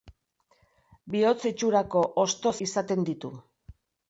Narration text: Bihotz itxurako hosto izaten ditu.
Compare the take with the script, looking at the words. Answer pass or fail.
pass